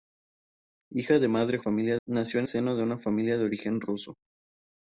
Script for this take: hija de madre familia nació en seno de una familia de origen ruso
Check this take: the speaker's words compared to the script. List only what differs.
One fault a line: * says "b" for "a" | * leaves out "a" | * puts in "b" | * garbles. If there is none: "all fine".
all fine